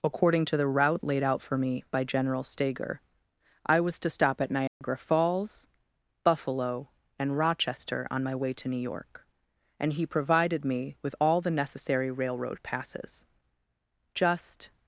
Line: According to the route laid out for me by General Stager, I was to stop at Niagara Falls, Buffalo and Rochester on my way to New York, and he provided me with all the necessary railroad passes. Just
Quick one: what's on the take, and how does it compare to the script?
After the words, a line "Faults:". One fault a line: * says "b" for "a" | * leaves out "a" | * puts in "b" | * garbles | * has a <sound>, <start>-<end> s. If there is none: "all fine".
According to the route laid out for me by General Stager, I was to stop at Niagara Falls, Buffalo and Rochester on my way to New York, and he provided me with all the necessary railroad passes. Just
Faults:
* has a dropout, 4.7-4.8 s